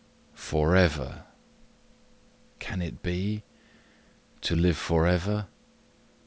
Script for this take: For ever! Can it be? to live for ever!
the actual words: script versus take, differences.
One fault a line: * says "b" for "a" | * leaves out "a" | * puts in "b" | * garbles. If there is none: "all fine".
all fine